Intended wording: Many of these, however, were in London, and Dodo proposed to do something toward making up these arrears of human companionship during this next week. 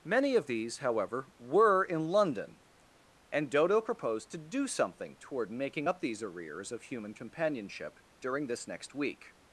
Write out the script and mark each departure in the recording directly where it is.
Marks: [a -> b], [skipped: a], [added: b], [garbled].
Many of these, however, were in London, and Dodo proposed to do something toward making up these arrears of human companionship during this next week.